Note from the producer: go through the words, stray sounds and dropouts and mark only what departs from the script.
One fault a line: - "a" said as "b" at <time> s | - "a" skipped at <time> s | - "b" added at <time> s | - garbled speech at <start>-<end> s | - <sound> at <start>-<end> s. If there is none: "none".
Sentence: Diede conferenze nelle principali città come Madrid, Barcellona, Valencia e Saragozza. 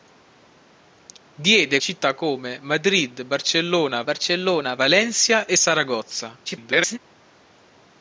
- "conferenze nelle principali" skipped at 1.8 s
- "Barcellona" added at 4.0 s
- garbled speech at 6.5-7.0 s